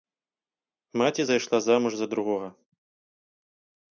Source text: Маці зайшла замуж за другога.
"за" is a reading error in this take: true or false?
false